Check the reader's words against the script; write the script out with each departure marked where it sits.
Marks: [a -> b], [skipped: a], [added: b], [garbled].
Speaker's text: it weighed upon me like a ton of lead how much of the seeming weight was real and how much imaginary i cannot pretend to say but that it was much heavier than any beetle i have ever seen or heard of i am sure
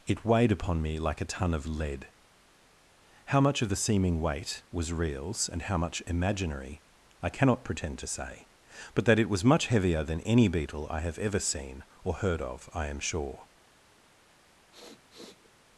it weighed upon me like a ton of lead how much of the seeming weight was [real -> reals] and how much imaginary i cannot pretend to say but that it was much heavier than any beetle i have ever seen or heard of i am sure